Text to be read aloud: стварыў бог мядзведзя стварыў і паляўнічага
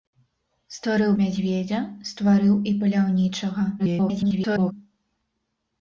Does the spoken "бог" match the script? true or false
false